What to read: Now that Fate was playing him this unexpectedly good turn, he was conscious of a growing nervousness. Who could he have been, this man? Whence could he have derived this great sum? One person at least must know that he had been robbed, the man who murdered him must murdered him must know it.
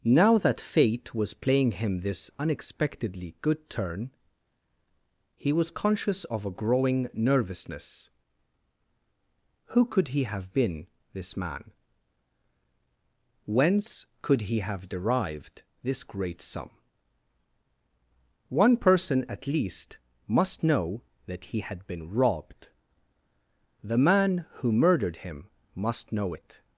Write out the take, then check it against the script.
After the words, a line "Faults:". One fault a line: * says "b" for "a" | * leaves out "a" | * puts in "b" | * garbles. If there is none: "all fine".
Now that Fate was playing him this unexpectedly good turn, he was conscious of a growing nervousness. Who could he have been, this man? Whence could he have derived this great sum? One person at least must know that he had been robbed, the man who murdered him must know it.
Faults:
* leaves out "murdered him must"